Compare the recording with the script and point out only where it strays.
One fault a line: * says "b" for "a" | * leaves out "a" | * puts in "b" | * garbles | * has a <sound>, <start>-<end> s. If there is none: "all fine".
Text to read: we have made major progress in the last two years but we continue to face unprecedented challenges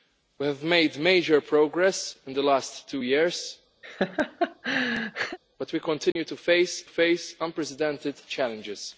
* has a laugh, 3.8-5.4 s
* has a dropout, 6.1-6.2 s
* puts in "face"